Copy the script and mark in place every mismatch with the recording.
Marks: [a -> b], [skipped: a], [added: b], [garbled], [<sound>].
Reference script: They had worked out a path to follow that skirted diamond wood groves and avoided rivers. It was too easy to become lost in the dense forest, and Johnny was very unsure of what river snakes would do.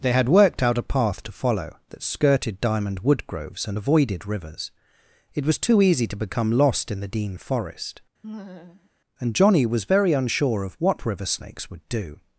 They had worked out a path to follow that skirted diamond wood groves and avoided rivers. It was too easy to become lost in the [dense -> dean] forest, [laugh] and Johnny was very unsure of what river snakes would do.